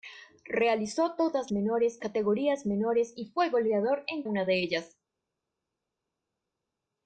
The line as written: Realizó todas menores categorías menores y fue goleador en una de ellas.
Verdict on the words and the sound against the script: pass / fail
pass